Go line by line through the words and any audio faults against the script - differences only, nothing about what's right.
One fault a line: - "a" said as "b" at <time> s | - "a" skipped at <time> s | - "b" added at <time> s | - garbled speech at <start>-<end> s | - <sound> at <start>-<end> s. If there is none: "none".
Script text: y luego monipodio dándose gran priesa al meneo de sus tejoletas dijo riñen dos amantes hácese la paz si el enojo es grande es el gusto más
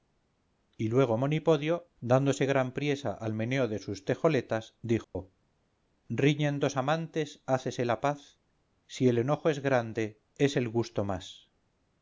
- dropout at 5.0-5.2 s